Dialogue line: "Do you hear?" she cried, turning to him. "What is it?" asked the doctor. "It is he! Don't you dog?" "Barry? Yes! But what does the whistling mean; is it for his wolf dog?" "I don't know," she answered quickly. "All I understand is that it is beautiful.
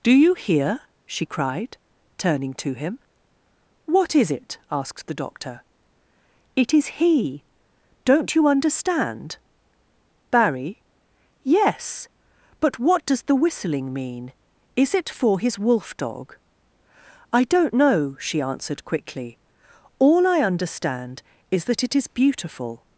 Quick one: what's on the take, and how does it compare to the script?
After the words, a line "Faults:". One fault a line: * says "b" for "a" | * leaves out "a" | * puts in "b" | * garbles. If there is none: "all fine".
"Do you hear?" she cried, turning to him. "What is it?" asked the doctor. "It is he! Don't you understand?" "Barry? Yes! But what does the whistling mean; is it for his wolf dog?" "I don't know," she answered quickly. "All I understand is that it is beautiful.
Faults:
* says "understand" for "dog"